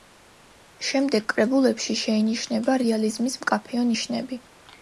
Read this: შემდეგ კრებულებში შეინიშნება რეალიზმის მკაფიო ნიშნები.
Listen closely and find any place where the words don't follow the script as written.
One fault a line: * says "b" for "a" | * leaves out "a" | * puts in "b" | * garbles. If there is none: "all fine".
all fine